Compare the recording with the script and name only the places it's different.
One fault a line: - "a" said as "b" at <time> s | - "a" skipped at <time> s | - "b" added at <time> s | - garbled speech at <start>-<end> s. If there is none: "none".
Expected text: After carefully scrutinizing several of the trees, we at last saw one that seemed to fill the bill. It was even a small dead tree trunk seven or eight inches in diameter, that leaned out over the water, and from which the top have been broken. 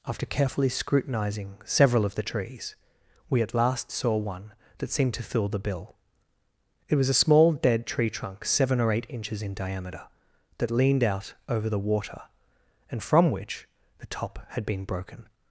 - "even" skipped at 7.1 s
- "have" said as "had" at 14.5 s